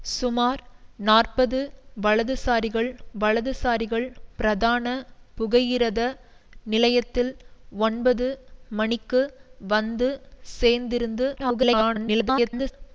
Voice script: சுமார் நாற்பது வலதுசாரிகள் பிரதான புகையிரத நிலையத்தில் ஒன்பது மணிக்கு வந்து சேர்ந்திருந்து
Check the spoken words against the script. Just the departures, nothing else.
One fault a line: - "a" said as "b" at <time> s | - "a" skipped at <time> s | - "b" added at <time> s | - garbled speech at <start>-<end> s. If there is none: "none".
- "வலதுசாரிகள்" added at 3.2 s
- garbled speech at 11.4-12.7 s